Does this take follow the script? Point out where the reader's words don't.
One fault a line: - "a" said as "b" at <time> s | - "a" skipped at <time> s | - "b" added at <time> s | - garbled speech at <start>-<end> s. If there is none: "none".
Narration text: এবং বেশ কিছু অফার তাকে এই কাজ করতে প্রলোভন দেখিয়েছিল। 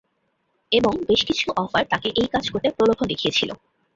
none